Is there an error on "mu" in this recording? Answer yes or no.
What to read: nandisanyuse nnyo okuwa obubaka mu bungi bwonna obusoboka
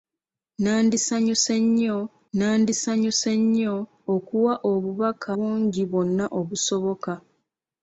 yes